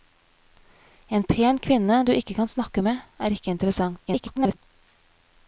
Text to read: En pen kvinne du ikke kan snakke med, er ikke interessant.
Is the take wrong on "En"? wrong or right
right